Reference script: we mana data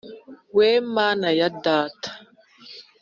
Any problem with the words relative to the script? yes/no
yes